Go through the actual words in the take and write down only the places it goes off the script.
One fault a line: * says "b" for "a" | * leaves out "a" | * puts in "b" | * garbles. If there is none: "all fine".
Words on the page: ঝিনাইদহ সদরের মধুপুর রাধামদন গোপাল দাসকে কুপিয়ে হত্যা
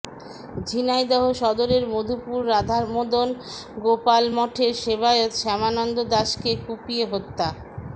* puts in "মঠের সেবায়েত শ্যামানন্দ"